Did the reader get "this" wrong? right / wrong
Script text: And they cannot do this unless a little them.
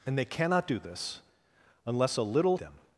right